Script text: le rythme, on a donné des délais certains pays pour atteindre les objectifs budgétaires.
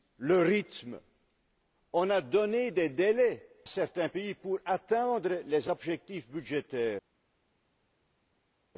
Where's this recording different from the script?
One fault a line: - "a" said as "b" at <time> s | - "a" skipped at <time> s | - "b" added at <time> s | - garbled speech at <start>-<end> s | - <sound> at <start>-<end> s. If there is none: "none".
none